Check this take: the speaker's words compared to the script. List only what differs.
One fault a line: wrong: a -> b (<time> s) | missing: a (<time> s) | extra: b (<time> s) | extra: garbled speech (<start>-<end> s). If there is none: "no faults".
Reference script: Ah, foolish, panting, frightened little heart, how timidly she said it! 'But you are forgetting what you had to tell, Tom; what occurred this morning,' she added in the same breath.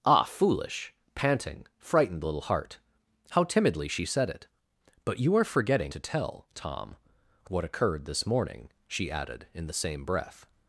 missing: what you had (5.9 s)